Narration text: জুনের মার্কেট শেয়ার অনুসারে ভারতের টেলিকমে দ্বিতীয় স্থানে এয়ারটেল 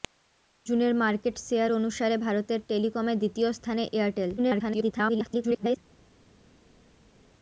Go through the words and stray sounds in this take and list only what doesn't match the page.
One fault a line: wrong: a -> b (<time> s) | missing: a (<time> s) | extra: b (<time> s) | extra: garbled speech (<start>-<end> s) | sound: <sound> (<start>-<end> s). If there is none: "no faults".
extra: garbled speech (4.4-5.8 s)